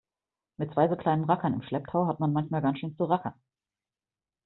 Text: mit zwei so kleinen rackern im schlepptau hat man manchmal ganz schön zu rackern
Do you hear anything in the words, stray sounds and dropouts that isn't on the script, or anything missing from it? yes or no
no